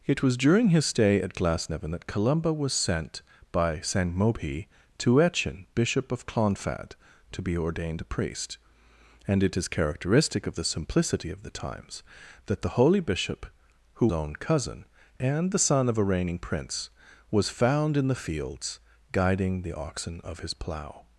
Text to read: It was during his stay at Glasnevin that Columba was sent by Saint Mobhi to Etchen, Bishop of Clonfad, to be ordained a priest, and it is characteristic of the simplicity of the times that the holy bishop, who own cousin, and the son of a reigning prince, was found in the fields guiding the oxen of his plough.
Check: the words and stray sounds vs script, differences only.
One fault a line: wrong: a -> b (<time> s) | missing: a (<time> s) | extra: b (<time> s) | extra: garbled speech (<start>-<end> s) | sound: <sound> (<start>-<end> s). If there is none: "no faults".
no faults